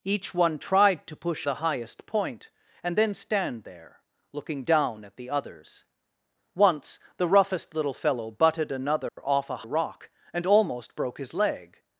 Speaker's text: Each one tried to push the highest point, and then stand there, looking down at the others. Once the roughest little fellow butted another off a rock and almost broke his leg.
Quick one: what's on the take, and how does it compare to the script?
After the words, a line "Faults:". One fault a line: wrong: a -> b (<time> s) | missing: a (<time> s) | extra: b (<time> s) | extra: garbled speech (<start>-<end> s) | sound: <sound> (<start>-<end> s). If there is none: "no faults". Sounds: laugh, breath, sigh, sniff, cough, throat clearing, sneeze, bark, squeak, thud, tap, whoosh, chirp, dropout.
Each one tried to push the highest point, and then stand there, looking down at the others. Once the roughest little fellow butted another off a rock and almost broke his leg.
Faults:
sound: dropout (9.1-9.2 s)